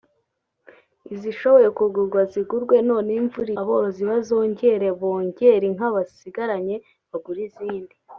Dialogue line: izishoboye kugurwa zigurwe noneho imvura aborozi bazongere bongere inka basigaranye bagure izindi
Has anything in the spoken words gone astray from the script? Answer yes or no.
no